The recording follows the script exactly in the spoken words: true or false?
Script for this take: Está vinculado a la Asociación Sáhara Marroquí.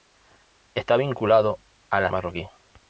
false